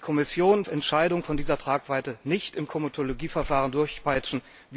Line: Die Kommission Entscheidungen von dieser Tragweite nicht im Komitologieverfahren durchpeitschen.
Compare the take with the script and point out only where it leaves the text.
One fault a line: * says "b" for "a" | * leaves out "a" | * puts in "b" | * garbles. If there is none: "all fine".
all fine